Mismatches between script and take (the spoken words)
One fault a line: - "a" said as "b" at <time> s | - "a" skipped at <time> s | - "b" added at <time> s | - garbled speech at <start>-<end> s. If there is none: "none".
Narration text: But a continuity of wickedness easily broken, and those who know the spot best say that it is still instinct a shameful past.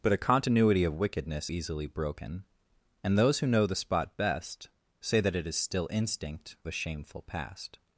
none